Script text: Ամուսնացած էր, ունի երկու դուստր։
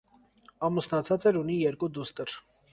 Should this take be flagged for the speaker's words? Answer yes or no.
no